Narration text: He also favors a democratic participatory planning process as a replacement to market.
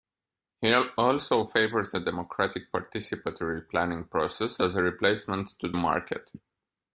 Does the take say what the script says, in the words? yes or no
yes